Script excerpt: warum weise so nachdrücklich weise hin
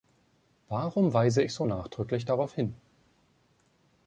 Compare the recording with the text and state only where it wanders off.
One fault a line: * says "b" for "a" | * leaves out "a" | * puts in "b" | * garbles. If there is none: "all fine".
* puts in "ich"
* says "darauf" for "weise"